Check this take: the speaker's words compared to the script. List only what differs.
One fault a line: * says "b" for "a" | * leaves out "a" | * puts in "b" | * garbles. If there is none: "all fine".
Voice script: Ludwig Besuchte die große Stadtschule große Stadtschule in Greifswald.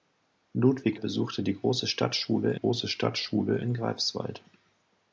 all fine